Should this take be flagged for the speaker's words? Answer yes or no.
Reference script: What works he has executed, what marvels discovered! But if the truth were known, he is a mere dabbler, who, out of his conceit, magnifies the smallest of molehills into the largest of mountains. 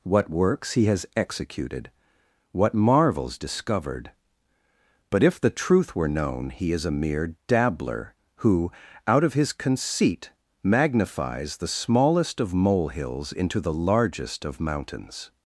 no